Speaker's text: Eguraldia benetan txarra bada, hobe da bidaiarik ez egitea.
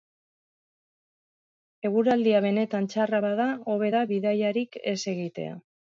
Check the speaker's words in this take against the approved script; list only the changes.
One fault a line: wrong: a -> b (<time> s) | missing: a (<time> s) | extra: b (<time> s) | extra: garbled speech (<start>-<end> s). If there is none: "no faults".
no faults